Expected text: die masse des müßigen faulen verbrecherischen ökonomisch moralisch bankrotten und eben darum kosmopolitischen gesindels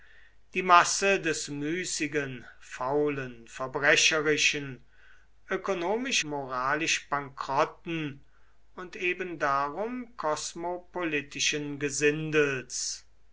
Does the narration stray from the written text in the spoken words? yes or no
no